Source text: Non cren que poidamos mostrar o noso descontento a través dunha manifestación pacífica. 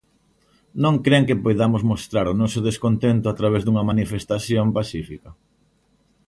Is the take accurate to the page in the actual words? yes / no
yes